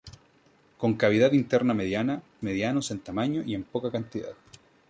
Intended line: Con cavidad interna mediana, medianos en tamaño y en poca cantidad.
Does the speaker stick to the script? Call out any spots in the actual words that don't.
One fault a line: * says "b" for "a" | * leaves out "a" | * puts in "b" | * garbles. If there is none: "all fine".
all fine